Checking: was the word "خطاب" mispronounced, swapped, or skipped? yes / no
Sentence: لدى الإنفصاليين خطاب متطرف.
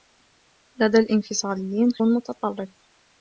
yes